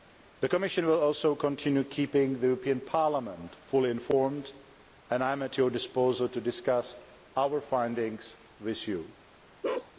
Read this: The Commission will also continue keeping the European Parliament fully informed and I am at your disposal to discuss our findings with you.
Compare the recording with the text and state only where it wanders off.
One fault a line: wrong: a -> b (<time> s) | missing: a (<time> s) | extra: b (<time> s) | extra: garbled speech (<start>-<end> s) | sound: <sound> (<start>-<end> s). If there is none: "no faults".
sound: bark (9.6-9.9 s)